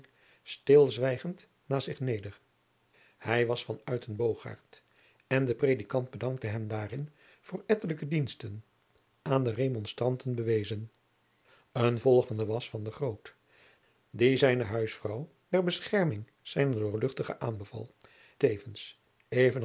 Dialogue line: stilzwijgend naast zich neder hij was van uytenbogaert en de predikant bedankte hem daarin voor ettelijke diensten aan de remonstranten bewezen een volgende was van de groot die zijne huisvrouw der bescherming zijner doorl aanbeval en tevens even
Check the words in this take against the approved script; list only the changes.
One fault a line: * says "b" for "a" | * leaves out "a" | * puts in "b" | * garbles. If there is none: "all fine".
* leaves out "en"